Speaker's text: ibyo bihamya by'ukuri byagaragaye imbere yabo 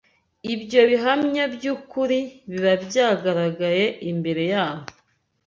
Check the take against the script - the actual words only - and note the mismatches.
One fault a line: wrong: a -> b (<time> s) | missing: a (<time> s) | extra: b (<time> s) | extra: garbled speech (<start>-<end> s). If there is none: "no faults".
extra: biba (2.5 s)